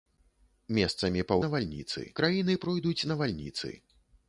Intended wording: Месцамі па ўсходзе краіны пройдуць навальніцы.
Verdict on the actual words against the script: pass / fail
fail